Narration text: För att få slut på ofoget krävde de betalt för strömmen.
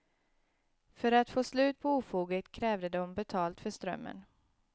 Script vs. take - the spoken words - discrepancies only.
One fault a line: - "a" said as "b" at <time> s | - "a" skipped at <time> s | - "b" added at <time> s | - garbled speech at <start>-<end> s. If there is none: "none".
none